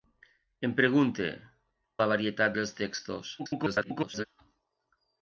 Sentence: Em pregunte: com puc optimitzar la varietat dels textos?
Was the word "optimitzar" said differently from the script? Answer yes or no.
yes